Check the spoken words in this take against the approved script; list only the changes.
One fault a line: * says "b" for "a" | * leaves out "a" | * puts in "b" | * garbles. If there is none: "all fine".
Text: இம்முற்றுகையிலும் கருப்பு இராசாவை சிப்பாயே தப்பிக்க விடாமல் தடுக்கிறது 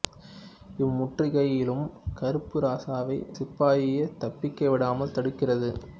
all fine